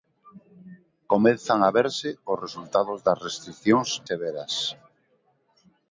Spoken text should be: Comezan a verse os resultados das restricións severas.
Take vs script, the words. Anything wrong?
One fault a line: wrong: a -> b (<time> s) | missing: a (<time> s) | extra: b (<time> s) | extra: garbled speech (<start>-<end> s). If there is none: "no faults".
no faults